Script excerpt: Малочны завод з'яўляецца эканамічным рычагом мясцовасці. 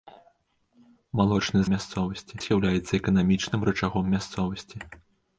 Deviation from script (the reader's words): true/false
true